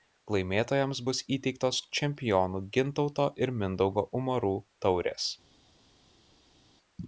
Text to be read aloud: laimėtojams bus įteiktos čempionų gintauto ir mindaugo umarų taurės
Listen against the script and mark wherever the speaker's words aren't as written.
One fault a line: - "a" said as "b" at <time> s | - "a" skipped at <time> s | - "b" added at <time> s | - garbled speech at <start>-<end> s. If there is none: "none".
none